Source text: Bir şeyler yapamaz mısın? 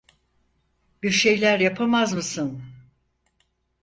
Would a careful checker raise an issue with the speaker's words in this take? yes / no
no